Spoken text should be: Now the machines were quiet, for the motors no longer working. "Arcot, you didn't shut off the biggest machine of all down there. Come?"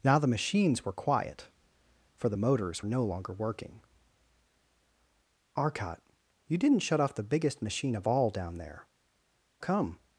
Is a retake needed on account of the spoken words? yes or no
no